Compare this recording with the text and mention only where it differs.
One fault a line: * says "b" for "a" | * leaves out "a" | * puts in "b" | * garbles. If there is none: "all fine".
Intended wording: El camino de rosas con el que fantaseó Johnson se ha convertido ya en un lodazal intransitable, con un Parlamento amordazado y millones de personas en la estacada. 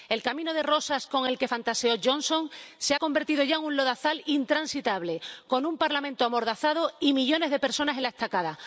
all fine